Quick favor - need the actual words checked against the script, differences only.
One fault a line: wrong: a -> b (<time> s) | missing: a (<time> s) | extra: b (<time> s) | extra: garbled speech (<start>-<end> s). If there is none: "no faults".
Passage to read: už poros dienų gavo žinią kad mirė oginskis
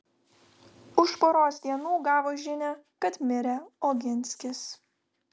no faults